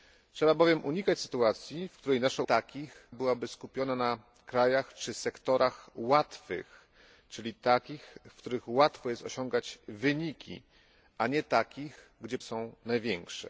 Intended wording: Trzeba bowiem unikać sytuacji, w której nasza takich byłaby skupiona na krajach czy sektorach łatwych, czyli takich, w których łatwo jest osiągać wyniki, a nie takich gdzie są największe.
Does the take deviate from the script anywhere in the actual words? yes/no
no